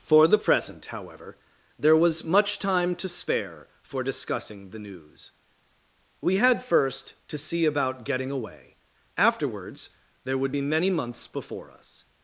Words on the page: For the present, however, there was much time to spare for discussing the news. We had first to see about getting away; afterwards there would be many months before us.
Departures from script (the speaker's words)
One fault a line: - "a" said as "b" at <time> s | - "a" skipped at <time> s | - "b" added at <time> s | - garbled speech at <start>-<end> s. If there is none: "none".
none